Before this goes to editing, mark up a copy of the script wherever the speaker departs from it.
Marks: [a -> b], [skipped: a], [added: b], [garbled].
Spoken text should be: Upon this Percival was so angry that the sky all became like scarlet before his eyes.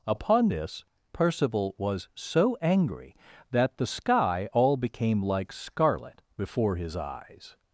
Upon this Percival was so angry that the sky all became like scarlet before his eyes.